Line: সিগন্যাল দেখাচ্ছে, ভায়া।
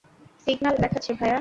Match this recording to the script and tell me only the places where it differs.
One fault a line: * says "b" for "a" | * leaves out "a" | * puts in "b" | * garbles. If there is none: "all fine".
all fine